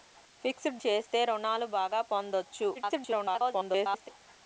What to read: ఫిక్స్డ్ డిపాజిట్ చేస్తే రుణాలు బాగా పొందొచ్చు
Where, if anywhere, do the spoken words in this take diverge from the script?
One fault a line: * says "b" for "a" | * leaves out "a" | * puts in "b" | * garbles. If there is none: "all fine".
* leaves out "డిపాజిట్"
* garbles